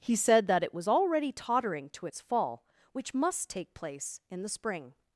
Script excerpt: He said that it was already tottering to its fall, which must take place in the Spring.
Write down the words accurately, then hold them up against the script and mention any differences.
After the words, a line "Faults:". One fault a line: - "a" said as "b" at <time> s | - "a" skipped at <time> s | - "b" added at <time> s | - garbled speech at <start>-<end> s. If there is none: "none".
He said that it was already tottering to its fall, which must take place in the Spring.
Faults:
none